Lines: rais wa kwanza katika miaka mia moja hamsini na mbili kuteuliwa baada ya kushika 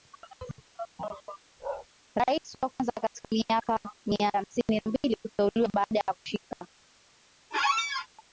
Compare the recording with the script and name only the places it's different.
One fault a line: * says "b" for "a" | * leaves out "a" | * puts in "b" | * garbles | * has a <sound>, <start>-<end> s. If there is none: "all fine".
* has a bark, 1.6-1.9 s
* leaves out "moja"
* has a squeak, 7.5-8.1 s